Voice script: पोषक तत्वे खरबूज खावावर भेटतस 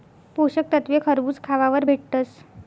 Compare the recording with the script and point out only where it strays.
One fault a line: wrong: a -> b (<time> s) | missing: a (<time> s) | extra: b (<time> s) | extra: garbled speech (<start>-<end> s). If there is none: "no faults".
no faults